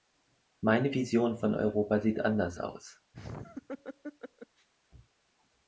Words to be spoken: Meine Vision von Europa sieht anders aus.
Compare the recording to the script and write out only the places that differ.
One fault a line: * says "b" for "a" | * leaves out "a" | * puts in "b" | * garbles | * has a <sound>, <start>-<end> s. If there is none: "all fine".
* has a laugh, 3.1-4.7 s